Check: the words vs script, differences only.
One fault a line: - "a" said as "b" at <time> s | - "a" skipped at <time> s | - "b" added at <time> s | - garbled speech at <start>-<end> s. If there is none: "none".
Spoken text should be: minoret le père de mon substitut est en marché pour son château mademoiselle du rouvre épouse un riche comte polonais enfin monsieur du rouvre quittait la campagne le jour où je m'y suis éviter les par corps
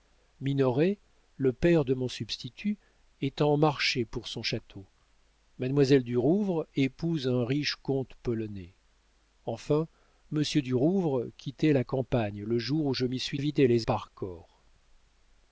none